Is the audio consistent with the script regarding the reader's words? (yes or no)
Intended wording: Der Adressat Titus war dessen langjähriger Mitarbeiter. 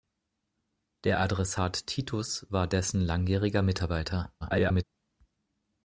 no